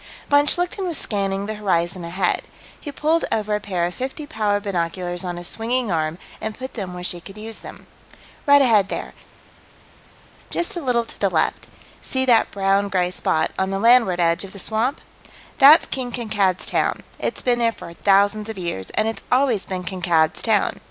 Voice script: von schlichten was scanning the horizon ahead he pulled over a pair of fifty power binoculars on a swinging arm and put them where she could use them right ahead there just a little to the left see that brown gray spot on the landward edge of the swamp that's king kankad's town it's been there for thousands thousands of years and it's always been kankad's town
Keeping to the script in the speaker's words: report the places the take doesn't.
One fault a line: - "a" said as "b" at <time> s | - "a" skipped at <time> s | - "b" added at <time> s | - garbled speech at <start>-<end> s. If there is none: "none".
- "thousands" skipped at 18.5 s